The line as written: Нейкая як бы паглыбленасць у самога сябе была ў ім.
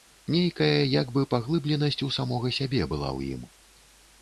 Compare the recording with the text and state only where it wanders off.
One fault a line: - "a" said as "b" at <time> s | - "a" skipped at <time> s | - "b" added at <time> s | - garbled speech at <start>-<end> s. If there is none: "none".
none